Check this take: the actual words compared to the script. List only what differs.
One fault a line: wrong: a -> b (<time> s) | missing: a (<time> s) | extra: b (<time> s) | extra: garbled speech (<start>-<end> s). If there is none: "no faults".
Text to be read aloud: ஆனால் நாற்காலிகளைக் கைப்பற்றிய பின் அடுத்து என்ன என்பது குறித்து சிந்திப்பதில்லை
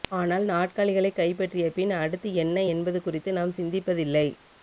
extra: நாம் (3.3 s)